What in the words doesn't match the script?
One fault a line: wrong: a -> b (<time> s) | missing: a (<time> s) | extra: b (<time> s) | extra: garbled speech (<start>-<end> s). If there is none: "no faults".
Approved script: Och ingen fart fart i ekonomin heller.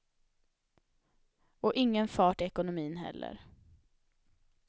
missing: fart (2.4 s)